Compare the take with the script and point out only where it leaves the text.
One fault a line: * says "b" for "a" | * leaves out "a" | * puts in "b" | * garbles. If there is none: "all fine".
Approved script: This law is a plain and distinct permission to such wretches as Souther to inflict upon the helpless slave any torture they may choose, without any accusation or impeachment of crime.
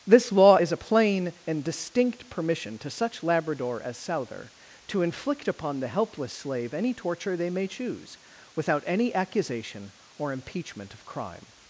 * says "labrador" for "wretches"